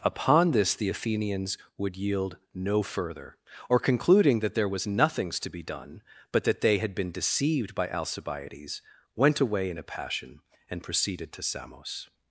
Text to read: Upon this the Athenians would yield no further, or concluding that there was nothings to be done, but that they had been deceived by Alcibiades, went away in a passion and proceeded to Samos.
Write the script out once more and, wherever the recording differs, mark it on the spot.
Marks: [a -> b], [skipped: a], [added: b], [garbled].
Upon this the Athenians would yield no further, or concluding that there was nothings to be done, but that they had been deceived by Alcibiades, went away in a passion and proceeded to Samos.